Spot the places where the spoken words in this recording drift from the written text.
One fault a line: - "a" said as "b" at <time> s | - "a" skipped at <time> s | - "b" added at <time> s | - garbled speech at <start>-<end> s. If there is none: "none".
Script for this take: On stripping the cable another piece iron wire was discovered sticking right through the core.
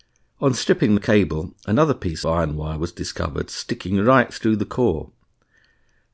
none